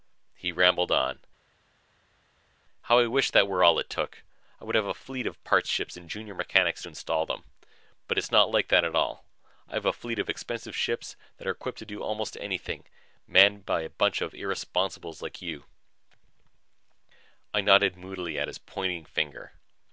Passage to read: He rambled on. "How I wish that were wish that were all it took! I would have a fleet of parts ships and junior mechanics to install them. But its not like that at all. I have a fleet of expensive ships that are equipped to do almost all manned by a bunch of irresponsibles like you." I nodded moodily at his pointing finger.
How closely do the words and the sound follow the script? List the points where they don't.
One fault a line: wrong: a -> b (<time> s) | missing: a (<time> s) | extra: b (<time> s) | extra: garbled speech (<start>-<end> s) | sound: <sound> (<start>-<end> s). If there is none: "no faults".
missing: wish that were (3.6 s)
wrong: all -> anything (12.4 s)